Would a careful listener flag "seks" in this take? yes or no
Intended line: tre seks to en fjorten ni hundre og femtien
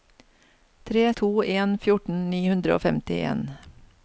yes